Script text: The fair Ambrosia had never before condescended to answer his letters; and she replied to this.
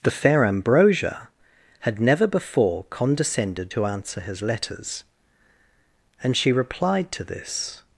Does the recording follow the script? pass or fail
pass